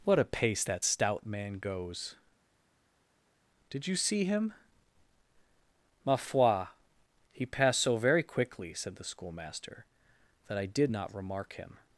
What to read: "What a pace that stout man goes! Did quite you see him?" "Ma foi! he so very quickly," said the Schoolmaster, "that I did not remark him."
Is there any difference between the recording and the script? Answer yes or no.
yes